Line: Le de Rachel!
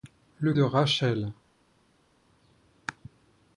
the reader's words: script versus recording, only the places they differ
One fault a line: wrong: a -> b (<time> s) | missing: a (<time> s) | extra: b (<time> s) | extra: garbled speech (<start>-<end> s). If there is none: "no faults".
no faults